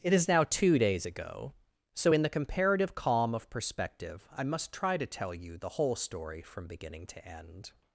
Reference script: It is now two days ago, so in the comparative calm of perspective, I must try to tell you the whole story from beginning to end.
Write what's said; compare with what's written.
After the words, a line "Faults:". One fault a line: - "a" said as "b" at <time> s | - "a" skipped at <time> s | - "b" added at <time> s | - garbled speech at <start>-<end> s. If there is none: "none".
It is now two days ago, so in the comparative calm of perspective, I must try to tell you the whole story from beginning to end.
Faults:
none